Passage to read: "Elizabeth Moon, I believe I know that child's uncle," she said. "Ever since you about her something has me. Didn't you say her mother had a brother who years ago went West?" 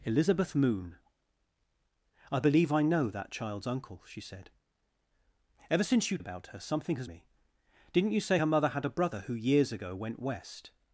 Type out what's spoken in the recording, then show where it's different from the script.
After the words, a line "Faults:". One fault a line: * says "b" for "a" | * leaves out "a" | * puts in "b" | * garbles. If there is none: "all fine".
"Elizabeth Moon, I believe I know that child's uncle," she said. "Ever since you about her something has me. Didn't you say her mother had a brother who years ago went West?"
Faults:
all fine